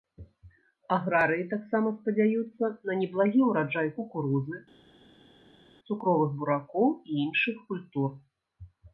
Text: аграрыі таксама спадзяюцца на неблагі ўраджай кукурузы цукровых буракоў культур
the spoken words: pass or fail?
fail